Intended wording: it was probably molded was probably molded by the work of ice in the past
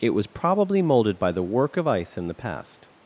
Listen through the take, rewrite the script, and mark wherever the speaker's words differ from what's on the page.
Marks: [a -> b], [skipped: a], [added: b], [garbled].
it was probably molded [skipped: was probably molded] by the work of ice in the past